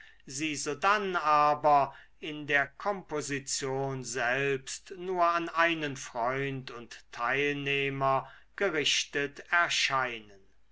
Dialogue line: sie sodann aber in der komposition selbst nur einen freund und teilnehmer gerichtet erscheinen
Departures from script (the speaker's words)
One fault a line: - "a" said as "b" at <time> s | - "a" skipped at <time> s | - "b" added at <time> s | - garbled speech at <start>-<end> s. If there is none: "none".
- "an" added at 5.2 s